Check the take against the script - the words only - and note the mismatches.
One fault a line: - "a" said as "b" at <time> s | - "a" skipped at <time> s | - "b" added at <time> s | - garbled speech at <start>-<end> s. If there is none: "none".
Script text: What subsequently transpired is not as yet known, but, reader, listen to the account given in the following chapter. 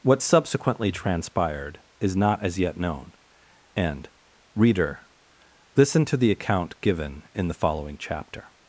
- "but" said as "and" at 3.8 s